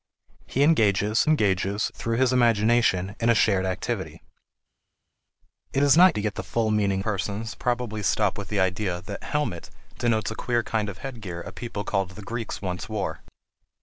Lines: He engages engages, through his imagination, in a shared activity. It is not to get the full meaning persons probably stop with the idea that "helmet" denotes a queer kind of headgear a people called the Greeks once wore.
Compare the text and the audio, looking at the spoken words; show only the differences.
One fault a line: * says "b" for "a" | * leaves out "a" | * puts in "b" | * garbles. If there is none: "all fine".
all fine